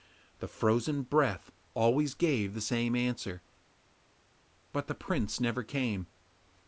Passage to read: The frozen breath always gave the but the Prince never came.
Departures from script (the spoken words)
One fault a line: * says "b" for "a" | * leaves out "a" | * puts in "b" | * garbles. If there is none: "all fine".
* puts in "same answer"